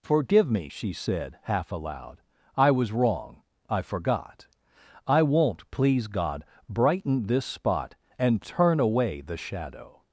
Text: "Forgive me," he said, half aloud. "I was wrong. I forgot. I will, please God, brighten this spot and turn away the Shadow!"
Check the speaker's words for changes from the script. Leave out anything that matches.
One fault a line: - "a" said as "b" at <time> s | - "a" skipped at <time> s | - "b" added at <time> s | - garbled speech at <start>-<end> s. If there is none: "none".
- "he" said as "she" at 0.7 s
- "will" said as "won't" at 5.2 s